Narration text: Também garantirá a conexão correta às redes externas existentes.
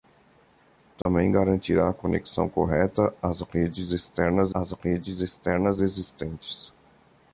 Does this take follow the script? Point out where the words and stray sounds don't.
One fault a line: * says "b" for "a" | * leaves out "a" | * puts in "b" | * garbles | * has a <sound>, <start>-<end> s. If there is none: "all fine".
* has a dropout, 1.0-1.1 s
* puts in "às redes externas"